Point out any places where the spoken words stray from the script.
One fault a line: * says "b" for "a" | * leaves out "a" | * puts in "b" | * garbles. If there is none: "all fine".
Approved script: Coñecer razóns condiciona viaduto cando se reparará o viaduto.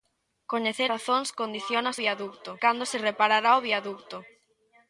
all fine